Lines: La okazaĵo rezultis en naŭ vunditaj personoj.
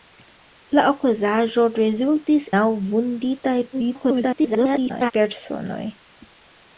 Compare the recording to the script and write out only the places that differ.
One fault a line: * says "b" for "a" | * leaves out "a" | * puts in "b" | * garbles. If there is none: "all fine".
* leaves out "en"
* garbles